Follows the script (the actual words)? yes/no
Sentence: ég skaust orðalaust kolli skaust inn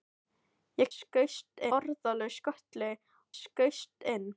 yes